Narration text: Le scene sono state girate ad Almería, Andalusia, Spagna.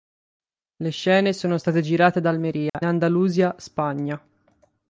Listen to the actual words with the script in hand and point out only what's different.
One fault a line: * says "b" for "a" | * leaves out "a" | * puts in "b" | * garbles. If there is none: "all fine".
all fine